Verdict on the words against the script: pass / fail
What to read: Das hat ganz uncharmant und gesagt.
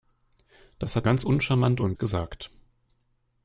pass